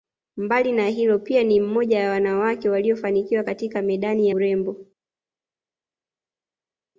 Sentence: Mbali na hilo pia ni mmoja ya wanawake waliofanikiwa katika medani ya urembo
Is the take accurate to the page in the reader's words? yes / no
no